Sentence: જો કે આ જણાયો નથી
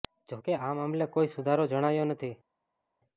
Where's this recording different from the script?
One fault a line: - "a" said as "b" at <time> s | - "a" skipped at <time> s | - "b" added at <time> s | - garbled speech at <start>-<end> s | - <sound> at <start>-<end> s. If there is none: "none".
- "મામલે કોઈ સુધારો" added at 0.7 s